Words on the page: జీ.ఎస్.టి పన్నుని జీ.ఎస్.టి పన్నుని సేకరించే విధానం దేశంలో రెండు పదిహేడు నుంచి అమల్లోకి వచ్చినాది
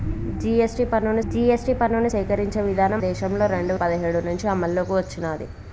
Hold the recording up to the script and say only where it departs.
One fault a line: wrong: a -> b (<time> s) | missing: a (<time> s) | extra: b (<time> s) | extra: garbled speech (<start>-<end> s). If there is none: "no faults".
no faults